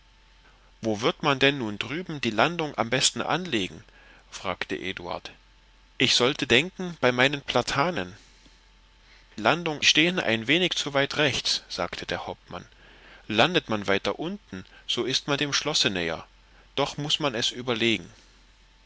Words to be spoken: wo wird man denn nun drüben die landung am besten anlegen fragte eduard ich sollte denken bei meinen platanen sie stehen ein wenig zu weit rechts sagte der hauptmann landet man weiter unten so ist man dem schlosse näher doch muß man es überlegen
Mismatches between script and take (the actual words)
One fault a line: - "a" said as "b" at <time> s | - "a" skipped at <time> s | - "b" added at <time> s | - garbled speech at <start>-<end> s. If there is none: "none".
- "sie" said as "landung" at 9.4 s